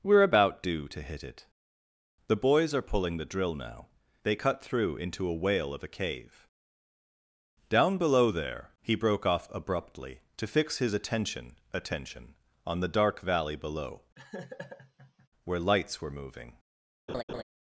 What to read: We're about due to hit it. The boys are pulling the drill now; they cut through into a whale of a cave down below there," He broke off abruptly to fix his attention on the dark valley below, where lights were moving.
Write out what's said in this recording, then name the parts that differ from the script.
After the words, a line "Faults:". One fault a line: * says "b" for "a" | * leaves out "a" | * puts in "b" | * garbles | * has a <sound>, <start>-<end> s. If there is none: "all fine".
We're about due to hit it. The boys are pulling the drill now; they cut through into a whale of a cave down below there," He broke off abruptly to fix his attention attention on the dark valley below, where lights were moving.
Faults:
* puts in "attention"
* has a laugh, 14.2-15.3 s
* has a laugh, 17.1-17.4 s